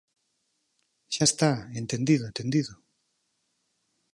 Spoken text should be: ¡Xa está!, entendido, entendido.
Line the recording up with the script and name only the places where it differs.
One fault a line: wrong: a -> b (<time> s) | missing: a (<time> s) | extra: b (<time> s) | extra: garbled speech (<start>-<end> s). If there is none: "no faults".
no faults